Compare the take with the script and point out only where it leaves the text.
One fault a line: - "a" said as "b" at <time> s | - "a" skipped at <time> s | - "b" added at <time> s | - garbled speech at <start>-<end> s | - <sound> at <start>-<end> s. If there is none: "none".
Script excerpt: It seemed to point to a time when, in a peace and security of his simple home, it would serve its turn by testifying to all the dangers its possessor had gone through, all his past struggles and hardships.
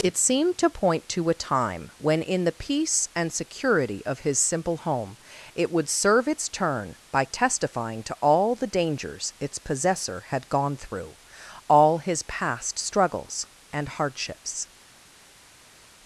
- "a" said as "the" at 2.4 s